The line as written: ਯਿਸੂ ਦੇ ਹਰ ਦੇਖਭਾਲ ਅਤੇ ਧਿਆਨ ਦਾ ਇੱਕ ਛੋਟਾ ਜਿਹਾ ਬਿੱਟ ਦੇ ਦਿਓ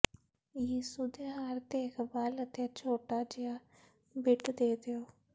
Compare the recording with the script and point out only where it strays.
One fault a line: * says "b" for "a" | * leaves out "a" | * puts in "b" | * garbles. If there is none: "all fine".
* leaves out "ਧਿਆਨ ਦਾ ਇੱਕ"